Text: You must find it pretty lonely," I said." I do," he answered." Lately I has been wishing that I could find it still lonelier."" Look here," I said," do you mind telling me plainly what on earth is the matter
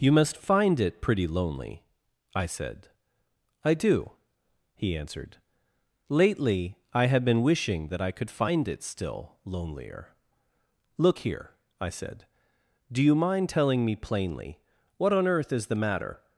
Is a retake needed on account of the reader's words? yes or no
yes